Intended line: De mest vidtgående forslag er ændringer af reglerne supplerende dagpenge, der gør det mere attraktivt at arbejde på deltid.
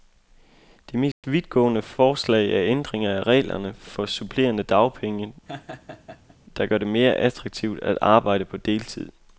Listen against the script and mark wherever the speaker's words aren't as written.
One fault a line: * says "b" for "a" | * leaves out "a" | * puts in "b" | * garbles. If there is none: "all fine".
* puts in "for"